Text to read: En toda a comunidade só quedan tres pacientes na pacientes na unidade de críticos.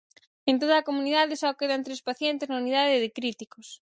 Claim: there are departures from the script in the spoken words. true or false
true